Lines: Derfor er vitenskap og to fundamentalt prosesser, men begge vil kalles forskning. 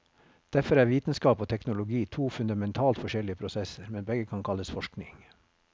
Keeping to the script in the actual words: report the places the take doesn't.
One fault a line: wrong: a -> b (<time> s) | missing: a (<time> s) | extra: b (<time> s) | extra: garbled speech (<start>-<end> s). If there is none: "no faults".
extra: teknologi (1.5 s)
extra: forskjellige (3.0 s)
wrong: vil -> kan (4.2 s)